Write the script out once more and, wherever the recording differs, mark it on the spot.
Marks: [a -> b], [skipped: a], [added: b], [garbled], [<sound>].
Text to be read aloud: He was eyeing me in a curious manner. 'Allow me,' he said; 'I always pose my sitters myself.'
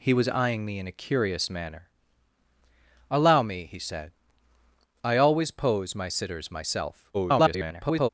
He was eyeing me in a curious manner. 'Allow me,' he said; 'I always pose my sitters myself.' [garbled]